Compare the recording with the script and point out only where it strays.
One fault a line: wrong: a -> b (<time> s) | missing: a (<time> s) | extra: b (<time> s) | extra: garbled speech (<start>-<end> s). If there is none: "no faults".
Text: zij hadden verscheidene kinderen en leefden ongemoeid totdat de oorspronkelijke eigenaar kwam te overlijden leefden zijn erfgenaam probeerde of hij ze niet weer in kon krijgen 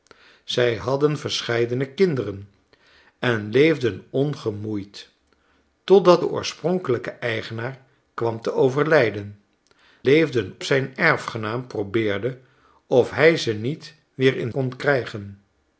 no faults